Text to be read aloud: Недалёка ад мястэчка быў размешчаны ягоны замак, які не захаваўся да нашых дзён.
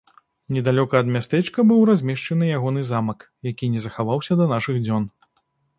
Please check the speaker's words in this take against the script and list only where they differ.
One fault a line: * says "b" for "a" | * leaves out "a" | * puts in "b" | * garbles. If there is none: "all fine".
all fine